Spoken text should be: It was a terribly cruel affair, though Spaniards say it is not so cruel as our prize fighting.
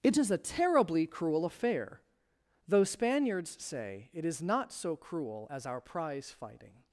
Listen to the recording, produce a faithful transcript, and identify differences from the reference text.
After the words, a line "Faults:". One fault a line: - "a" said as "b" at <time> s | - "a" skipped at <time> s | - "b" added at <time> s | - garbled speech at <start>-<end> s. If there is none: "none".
It is a terribly cruel affair, though Spaniards say it is not so cruel as our prize fighting.
Faults:
- "was" said as "is" at 0.2 s